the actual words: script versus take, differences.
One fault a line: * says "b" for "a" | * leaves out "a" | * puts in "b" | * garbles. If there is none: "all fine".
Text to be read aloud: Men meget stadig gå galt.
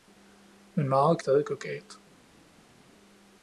all fine